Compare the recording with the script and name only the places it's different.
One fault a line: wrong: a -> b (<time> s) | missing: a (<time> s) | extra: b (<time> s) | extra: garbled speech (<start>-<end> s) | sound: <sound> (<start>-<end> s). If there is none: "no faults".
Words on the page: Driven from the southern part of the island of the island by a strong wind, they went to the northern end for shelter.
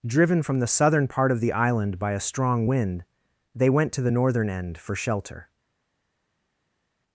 missing: of the island (2.0 s)